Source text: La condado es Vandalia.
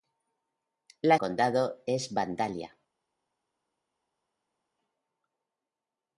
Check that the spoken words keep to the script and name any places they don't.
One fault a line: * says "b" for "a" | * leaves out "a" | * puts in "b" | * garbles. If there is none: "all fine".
all fine